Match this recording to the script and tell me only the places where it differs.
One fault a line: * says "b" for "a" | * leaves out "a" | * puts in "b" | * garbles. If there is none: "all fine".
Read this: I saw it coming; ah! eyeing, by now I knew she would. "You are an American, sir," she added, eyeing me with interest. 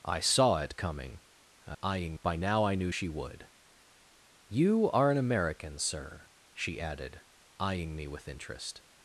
all fine